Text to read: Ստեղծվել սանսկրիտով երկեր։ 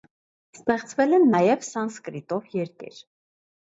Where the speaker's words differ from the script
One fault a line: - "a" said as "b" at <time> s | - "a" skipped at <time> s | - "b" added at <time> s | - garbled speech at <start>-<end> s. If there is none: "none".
- "են նաև" added at 1.2 s